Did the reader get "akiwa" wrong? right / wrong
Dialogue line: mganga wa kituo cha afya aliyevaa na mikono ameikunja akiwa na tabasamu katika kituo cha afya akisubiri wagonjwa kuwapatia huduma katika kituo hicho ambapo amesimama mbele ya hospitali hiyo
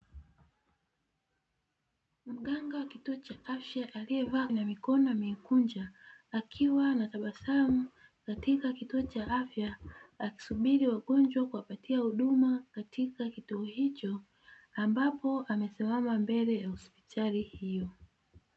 right